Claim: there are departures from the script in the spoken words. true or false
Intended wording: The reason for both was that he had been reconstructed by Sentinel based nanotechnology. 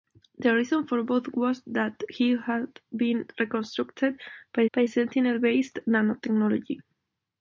true